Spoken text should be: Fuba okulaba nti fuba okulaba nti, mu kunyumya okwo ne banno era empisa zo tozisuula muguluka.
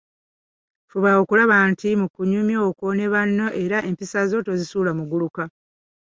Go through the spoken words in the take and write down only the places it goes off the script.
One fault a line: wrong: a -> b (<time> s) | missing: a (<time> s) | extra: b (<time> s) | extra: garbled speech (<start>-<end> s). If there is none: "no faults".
missing: fuba okulaba nti (1.9 s)